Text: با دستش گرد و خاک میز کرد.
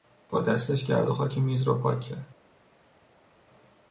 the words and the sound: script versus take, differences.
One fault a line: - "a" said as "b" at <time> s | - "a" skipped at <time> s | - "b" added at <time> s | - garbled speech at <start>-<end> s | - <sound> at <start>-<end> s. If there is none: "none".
- "را پاک" added at 1.6 s